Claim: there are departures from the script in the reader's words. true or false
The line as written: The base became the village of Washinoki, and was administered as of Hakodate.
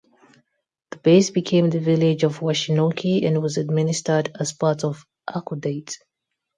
true